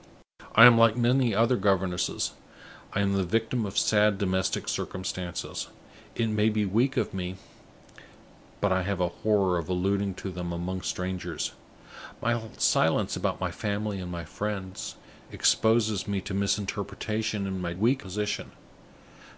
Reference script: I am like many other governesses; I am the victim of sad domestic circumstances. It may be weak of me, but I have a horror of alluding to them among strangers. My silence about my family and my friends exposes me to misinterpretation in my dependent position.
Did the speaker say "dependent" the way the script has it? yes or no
no